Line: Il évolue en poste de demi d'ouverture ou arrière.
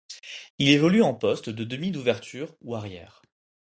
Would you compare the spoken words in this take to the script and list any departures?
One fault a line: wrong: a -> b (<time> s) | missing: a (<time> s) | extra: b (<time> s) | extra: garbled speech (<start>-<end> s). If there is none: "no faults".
no faults